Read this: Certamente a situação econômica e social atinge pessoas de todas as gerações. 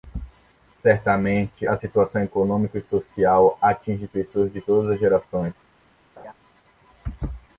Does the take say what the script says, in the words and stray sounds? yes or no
no